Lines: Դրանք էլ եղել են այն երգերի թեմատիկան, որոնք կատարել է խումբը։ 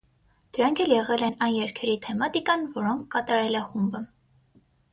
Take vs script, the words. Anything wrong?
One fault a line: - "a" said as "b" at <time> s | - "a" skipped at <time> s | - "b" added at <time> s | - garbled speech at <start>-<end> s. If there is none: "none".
none